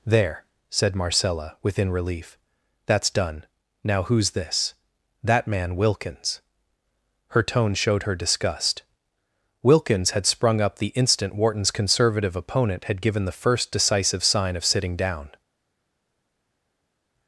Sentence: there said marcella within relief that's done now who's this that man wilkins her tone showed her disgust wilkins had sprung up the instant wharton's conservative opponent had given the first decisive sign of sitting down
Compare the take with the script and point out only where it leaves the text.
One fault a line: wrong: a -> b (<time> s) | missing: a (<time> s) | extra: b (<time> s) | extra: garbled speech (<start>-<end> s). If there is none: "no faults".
no faults